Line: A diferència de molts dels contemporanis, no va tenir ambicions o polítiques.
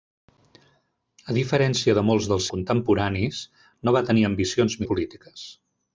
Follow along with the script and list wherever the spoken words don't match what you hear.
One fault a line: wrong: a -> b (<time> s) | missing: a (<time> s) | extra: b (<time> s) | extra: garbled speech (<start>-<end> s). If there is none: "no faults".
no faults